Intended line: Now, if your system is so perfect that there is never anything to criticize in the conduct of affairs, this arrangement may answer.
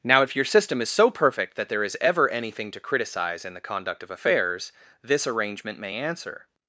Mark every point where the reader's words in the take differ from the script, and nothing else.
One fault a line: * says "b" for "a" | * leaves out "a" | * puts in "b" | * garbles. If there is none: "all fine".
* says "ever" for "never"